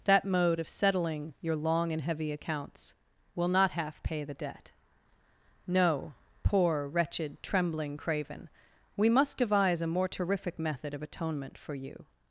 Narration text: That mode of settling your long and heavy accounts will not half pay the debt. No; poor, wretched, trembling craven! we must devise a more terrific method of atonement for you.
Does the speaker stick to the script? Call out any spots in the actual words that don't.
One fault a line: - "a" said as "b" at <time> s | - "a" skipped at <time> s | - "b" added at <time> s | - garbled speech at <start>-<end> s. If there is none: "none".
none